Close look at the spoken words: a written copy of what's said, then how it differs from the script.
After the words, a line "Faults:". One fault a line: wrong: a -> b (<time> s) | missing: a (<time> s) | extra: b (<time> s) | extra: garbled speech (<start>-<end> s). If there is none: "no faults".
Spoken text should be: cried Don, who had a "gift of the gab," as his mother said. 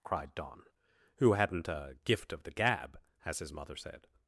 cried Don, who hadn't a "gift of the gab," as his mother said.
Faults:
wrong: had -> hadn't (1.3 s)